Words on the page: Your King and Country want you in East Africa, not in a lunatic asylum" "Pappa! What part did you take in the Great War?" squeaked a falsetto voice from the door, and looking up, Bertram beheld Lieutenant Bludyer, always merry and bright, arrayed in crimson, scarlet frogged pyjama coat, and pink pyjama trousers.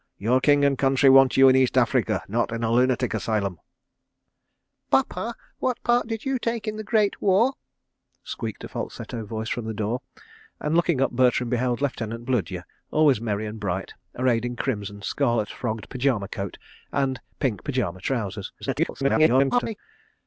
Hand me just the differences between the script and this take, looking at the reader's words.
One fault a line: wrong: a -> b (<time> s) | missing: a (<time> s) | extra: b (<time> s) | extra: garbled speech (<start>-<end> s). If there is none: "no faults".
extra: garbled speech (18.6-19.8 s)